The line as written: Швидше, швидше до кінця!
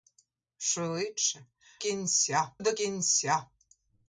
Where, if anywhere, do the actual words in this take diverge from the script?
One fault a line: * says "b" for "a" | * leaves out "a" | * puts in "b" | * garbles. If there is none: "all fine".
* says "кінця" for "швидше"